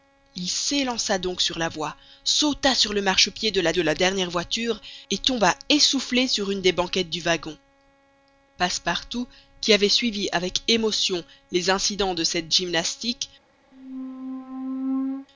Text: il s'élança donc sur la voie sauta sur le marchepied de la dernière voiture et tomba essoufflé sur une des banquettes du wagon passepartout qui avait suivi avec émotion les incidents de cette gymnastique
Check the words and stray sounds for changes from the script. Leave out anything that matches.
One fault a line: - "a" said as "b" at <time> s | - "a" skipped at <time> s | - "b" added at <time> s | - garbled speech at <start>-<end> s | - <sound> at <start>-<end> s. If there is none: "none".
- "de la" added at 3.7 s
- squeak at 13.7-15.3 s